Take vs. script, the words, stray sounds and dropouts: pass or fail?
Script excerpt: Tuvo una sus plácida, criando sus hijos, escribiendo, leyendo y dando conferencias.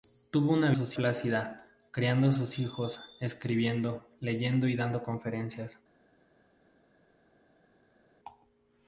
pass